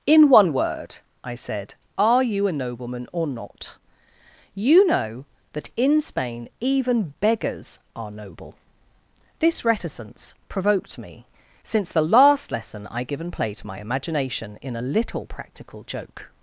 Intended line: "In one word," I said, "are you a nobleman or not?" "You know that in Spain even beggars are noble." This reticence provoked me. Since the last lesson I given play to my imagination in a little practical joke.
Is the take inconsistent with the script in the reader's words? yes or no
no